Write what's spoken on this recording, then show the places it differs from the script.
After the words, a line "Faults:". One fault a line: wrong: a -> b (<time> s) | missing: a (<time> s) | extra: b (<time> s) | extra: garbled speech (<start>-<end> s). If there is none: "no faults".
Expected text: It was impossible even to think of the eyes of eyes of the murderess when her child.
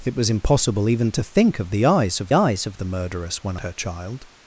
It was impossible even to think of the eyes of eyes of the murderess when her child.
Faults:
no faults